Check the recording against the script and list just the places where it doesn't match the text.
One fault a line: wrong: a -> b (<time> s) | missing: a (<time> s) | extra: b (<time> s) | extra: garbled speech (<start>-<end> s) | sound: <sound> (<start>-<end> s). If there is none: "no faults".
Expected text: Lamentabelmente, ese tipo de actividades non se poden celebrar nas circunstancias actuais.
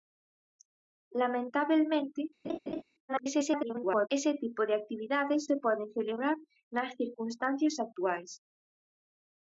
sound: laugh (2.4-2.8 s)
extra: garbled speech (3.1-4.1 s)
missing: non (5.4 s)